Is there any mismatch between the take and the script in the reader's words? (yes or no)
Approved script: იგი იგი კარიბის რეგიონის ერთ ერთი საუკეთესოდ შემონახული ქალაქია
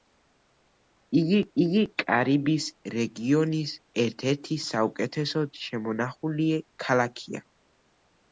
no